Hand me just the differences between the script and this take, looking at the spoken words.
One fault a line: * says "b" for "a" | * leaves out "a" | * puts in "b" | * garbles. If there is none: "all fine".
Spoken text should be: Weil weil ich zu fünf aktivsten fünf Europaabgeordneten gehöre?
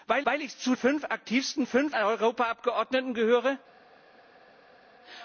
all fine